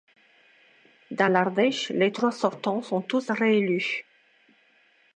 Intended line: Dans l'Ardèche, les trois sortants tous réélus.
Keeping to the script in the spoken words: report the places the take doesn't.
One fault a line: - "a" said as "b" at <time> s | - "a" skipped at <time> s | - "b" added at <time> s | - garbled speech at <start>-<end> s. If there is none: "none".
- "sont" added at 2.8 s